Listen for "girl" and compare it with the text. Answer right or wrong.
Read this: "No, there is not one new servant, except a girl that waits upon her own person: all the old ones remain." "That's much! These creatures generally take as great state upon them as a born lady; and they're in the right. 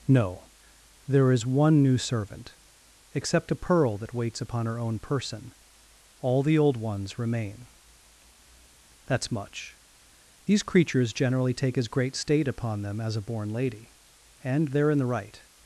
wrong